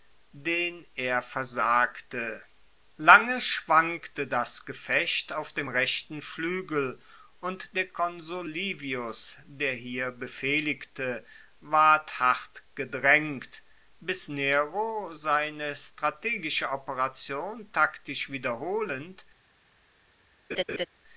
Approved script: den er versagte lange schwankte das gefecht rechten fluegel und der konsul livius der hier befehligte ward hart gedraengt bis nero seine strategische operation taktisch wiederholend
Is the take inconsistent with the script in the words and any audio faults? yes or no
yes